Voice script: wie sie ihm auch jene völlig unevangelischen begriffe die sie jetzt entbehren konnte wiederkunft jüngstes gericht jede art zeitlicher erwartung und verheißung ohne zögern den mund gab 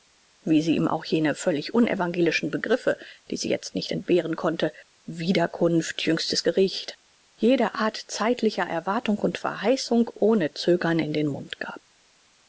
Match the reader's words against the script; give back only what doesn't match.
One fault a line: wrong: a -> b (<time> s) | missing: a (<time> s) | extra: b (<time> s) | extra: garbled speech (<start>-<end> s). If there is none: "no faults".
extra: nicht (3.7 s)
extra: in (11.0 s)